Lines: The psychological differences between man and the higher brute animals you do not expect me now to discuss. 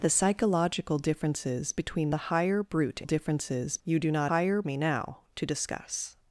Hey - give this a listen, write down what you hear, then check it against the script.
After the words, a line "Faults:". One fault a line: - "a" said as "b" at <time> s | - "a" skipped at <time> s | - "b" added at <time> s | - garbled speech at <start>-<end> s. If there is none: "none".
The psychological differences between the higher brute differences you do not higher me now to discuss.
Faults:
- "man and" skipped at 2.1 s
- "animals" said as "differences" at 3.0 s
- "expect" said as "higher" at 4.3 s